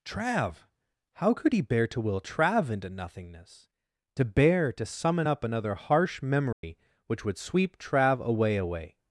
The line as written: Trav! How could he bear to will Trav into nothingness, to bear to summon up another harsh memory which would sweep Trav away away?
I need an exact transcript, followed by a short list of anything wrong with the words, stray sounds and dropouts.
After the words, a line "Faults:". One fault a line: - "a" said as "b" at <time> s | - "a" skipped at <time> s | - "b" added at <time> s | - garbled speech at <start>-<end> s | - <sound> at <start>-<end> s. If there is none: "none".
Trav! How could he bear to will Trav into nothingness, to bear to summon up another harsh memory which would sweep Trav away away?
Faults:
- dropout at 6.5-6.6 s